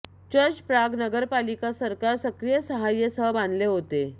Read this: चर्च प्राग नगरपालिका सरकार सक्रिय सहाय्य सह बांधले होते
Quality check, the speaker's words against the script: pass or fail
pass